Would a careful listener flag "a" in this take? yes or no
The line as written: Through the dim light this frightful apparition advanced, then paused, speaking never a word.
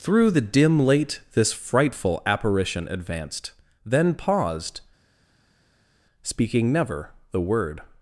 yes